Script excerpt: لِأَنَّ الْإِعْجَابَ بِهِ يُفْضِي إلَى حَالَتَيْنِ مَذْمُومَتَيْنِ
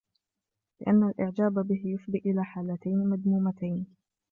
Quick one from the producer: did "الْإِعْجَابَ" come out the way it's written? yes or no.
yes